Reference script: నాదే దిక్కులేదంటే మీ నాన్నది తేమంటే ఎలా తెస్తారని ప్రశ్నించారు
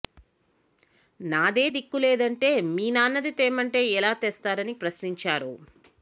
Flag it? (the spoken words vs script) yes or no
no